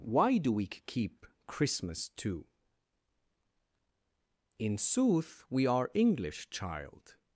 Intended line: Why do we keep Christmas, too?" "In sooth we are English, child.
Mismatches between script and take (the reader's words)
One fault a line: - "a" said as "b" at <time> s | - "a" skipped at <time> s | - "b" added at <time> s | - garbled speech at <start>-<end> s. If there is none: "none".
none